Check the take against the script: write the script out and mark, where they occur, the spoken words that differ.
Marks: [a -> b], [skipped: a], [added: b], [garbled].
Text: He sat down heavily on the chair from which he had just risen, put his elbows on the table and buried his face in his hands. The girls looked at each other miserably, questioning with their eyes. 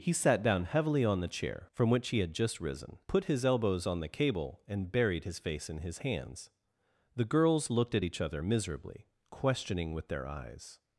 He sat down heavily on the chair from which he had just risen, put his elbows on the [table -> cable] and buried his face in his hands. The girls looked at each other miserably, questioning with their eyes.